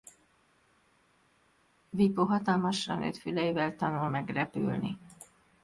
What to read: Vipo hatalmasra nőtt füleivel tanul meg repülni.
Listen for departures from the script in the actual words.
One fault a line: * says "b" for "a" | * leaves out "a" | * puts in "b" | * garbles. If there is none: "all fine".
all fine